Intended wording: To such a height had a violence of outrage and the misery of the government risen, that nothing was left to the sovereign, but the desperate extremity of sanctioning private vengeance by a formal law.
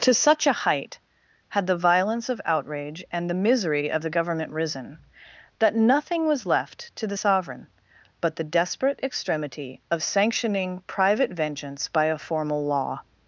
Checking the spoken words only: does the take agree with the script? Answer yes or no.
no